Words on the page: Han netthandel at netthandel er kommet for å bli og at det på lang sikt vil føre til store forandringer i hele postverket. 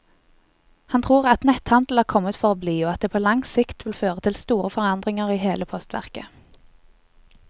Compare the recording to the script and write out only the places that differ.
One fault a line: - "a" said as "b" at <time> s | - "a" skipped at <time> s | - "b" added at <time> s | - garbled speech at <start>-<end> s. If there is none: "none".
- "netthandel" said as "tror" at 1.1 s